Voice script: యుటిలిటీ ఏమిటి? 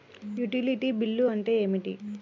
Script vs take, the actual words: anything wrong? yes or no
yes